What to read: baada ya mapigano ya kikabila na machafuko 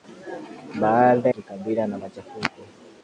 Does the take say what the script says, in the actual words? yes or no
no